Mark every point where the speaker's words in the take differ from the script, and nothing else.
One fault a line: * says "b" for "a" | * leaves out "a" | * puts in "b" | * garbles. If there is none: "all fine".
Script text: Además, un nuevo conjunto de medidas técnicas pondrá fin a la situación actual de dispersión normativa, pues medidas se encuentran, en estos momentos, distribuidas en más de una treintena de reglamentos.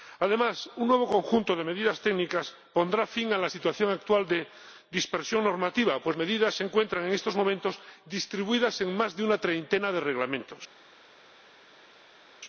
all fine